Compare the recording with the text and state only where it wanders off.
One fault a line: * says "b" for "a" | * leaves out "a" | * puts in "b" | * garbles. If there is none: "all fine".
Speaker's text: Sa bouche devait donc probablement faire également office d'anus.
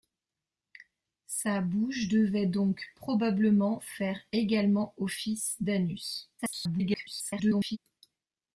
* garbles